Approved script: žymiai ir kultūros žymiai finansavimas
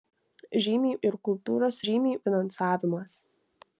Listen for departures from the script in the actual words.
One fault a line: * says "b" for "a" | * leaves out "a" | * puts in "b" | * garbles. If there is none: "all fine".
all fine